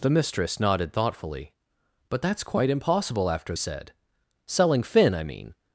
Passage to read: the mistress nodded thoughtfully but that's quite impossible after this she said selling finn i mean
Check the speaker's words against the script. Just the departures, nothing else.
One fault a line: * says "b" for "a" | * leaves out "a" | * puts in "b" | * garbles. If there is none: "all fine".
* leaves out "this she"